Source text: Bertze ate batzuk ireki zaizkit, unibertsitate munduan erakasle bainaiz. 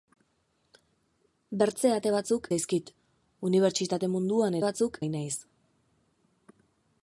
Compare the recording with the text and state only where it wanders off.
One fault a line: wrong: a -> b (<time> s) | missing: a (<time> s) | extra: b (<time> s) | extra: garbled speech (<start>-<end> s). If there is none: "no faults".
missing: ireki (2.5 s)
wrong: erakasle -> batzuk (4.6 s)